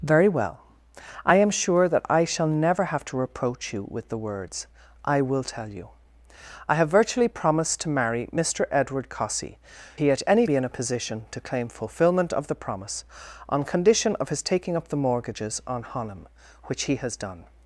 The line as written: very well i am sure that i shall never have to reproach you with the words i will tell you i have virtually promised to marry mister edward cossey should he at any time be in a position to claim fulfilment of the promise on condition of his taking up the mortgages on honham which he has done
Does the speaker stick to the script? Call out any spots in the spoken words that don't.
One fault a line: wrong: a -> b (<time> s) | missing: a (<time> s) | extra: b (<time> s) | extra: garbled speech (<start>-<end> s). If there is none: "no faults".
missing: should (9.6 s)
missing: time (10.5 s)